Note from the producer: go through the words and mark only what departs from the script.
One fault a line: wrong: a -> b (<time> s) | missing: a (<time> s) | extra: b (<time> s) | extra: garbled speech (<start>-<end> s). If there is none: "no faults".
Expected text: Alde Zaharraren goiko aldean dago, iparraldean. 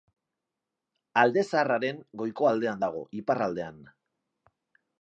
no faults